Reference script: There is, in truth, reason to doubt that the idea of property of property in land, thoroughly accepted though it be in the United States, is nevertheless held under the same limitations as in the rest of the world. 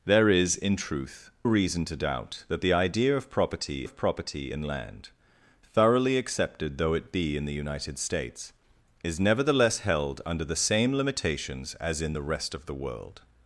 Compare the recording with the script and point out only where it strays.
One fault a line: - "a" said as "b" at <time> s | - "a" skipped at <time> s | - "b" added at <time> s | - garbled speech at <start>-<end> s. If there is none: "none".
none